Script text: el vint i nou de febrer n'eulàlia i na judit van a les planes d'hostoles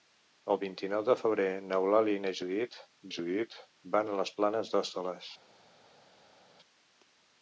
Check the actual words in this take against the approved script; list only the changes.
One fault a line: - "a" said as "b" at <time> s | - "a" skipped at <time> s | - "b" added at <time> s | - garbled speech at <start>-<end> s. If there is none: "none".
- "judit" added at 3.2 s